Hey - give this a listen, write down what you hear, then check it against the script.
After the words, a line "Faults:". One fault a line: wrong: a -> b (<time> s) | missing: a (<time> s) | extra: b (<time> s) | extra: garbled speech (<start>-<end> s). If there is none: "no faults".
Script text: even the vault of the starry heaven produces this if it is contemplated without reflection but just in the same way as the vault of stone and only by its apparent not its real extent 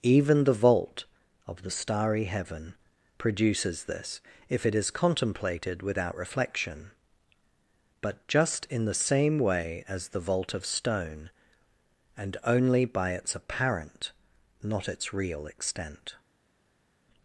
even the vault of the starry heaven produces this if it is contemplated without reflection but just in the same way as the vault of stone and only by its apparent not its real extent
Faults:
no faults